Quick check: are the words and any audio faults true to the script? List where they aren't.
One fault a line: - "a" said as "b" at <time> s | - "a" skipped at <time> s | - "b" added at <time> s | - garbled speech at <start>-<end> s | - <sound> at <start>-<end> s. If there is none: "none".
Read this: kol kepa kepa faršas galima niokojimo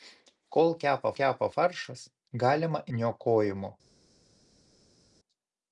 none